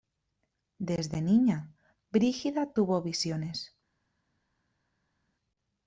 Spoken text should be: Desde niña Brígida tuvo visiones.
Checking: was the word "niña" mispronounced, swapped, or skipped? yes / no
no